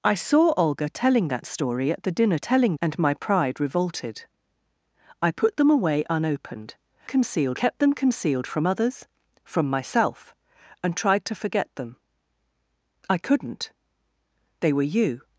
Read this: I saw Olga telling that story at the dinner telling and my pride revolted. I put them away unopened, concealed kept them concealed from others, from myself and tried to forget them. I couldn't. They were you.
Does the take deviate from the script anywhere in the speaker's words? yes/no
no